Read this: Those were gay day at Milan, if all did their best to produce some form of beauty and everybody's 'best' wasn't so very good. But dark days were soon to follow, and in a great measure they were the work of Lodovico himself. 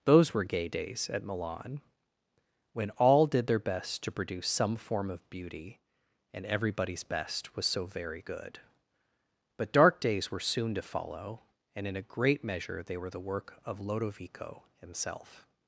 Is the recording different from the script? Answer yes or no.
yes